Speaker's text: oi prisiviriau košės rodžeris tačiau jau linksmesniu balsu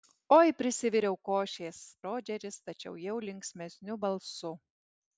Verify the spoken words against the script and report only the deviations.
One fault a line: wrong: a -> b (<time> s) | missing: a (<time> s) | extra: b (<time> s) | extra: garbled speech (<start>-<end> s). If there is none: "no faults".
no faults